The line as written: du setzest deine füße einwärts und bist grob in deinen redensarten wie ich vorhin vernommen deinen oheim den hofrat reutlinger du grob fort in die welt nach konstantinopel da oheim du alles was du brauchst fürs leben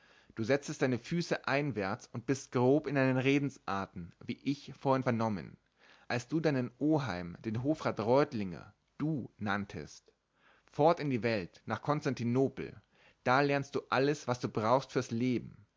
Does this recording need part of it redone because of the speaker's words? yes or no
yes